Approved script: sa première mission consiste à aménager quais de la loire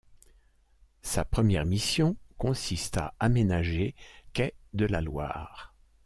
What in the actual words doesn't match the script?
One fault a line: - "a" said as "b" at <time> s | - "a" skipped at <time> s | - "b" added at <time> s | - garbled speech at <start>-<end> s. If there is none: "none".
none